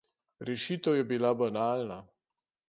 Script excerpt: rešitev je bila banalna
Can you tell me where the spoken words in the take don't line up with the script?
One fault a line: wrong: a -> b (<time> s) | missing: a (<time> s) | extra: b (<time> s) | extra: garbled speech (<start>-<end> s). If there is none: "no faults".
no faults